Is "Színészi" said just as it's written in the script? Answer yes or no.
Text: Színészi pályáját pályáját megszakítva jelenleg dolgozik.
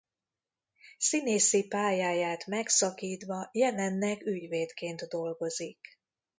yes